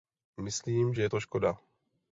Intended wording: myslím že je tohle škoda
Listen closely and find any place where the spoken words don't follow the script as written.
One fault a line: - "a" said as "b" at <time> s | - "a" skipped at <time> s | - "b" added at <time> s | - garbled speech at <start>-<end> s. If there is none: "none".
- "tohle" said as "to" at 1.1 s